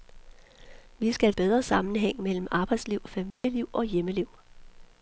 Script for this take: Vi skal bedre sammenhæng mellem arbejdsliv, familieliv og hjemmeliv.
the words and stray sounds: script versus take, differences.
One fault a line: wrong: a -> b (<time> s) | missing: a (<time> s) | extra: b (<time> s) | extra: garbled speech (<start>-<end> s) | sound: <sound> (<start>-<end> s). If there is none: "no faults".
sound: dropout (3.3-3.4 s)